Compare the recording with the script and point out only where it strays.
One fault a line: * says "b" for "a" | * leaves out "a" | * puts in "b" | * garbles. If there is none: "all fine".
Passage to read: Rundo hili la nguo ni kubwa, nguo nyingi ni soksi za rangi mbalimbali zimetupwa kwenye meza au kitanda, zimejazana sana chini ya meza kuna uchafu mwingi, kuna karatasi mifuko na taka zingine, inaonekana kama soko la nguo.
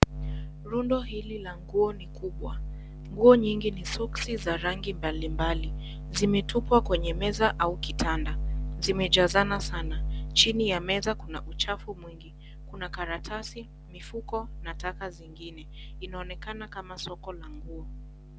all fine